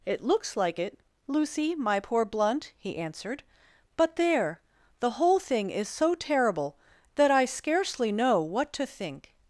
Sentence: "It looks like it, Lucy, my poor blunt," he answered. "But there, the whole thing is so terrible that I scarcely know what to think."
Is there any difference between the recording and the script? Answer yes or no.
no